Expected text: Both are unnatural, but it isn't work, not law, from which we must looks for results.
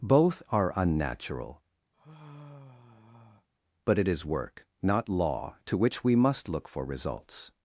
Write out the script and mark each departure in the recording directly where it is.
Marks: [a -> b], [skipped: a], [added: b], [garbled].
Both are unnatural, but it [isn't -> is] work, not law, [from -> to] which we must [looks -> look] for results.